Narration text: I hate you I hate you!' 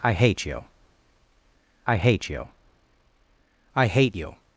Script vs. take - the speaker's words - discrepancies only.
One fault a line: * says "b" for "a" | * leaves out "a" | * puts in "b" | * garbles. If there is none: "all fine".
* puts in "I hate you"